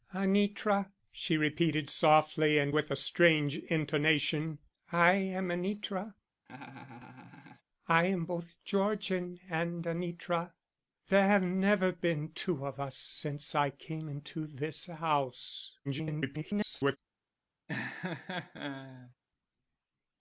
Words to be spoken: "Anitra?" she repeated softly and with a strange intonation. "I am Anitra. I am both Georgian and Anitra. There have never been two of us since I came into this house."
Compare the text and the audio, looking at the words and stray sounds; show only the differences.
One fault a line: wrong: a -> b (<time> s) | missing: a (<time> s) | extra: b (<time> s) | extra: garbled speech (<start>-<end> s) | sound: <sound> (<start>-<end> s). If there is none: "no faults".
sound: laugh (6.5-7.6 s)
extra: garbled speech (15.8-17.0 s)
sound: laugh (17.7-19.1 s)